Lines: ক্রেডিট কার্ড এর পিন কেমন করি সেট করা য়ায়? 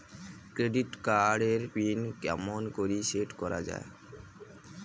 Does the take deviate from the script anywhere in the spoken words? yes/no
no